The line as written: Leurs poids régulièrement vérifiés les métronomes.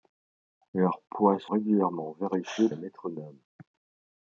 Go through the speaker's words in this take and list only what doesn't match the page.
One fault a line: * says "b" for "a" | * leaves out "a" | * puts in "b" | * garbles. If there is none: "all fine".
all fine